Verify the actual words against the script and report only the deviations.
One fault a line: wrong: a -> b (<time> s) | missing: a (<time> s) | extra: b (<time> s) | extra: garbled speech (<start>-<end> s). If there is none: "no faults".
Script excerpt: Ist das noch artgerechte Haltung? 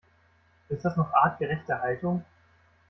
no faults